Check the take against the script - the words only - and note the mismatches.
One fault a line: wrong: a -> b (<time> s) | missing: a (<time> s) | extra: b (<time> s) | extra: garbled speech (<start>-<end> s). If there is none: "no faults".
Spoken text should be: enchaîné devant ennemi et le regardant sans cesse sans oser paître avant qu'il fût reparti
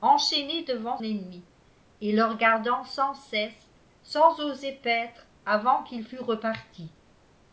no faults